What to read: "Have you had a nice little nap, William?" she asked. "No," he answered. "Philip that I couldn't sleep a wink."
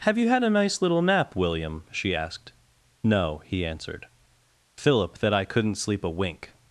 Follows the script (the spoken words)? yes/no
yes